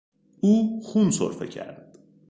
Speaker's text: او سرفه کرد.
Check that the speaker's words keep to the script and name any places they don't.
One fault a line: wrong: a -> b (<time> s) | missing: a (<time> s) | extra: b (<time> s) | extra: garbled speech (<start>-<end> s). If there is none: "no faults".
extra: خون (0.8 s)